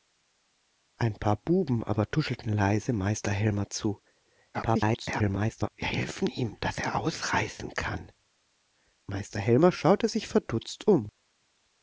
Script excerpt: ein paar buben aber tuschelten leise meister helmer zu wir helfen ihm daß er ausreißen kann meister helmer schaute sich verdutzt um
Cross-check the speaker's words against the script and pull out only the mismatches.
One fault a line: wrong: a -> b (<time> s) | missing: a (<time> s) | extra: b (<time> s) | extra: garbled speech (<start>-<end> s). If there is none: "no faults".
extra: garbled speech (4.5-5.7 s)